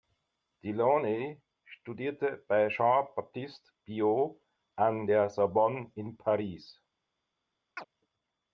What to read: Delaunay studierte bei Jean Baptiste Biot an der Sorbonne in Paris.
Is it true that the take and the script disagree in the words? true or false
false